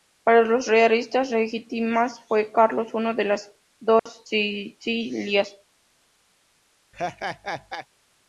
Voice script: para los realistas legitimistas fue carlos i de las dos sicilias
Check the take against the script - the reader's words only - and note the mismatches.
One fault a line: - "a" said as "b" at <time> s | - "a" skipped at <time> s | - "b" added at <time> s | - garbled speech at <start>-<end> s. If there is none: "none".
none